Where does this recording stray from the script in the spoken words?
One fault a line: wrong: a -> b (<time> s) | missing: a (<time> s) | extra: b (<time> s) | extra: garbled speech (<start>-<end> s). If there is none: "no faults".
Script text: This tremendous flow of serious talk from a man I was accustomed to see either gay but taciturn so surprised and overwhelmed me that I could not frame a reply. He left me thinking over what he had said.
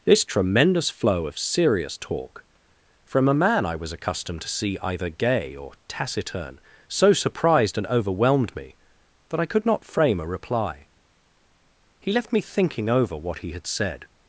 wrong: but -> or (5.5 s)